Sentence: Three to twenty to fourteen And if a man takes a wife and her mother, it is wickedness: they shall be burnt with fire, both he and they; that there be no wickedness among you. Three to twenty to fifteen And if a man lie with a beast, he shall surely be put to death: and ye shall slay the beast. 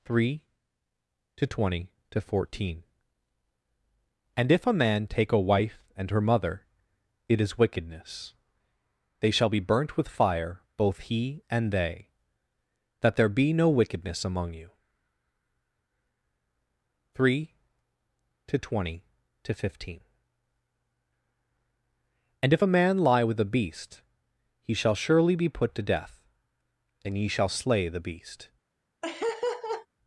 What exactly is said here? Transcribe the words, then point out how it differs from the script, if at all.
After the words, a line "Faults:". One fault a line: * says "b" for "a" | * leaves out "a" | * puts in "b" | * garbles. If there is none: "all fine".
Three to twenty to fourteen And if a man take a wife and her mother, it is wickedness: they shall be burnt with fire, both he and they; that there be no wickedness among you. Three to twenty to fifteen And if a man lie with a beast, he shall surely be put to death: and ye shall slay the beast.
Faults:
* says "take" for "takes"